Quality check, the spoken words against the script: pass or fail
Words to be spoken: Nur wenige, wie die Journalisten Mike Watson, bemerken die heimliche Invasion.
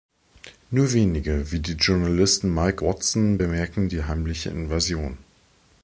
pass